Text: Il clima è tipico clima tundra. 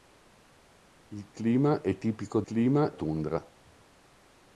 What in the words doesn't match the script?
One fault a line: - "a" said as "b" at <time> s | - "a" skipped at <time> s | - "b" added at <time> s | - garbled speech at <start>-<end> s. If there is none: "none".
none